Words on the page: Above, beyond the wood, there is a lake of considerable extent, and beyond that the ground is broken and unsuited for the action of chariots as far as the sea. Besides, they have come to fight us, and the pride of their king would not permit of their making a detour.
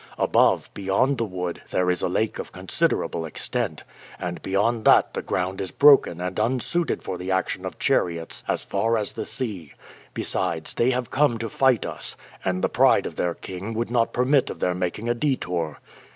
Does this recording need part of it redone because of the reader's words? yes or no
no